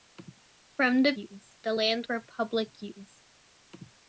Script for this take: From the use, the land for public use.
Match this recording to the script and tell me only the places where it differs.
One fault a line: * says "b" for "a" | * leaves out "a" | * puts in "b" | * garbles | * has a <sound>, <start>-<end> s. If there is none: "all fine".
all fine